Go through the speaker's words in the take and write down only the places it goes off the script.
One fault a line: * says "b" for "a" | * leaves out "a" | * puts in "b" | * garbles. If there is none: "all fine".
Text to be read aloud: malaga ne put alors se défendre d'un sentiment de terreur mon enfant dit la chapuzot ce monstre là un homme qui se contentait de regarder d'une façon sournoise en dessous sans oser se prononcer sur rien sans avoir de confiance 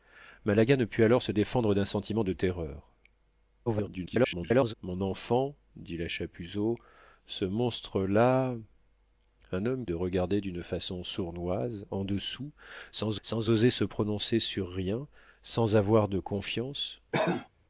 * garbles
* leaves out "qui se contentait"
* puts in "sans"